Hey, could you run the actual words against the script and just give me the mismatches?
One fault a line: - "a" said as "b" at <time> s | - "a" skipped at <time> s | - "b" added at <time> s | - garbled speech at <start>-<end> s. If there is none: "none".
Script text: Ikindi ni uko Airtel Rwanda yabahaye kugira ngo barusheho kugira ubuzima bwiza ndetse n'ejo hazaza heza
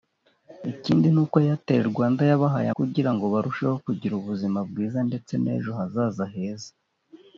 none